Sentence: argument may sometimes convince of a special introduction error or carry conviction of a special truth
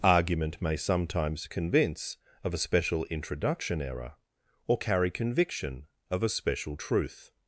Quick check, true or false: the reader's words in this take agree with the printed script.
true